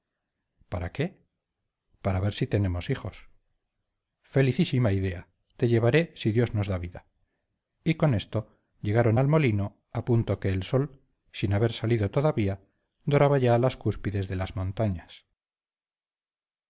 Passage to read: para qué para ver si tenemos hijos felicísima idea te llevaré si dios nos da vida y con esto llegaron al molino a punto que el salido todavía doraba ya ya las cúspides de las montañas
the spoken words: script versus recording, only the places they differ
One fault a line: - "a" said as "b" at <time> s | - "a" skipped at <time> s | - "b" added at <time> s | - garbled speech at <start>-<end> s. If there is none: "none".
- "sol sin haber" added at 10.6 s
- "ya" skipped at 13.6 s